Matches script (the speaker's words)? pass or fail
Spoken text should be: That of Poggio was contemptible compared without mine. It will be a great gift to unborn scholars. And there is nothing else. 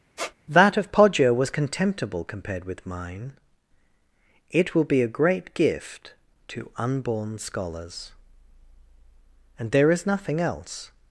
fail